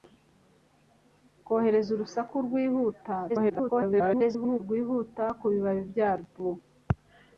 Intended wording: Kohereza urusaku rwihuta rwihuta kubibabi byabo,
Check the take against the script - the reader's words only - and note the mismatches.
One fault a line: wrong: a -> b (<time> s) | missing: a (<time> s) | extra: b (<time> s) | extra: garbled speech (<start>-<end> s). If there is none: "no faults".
extra: garbled speech (3.3-4.6 s)